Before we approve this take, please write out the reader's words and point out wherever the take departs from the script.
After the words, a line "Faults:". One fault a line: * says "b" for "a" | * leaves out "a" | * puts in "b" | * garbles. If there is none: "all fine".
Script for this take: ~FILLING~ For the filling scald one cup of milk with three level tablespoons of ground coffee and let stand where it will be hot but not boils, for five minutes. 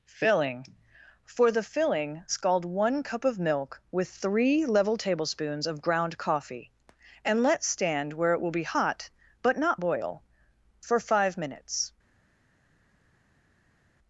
~FILLING~ For the filling scald one cup of milk with three level tablespoons of ground coffee and let stand where it will be hot but not boil, for five minutes.
Faults:
* says "boil" for "boils"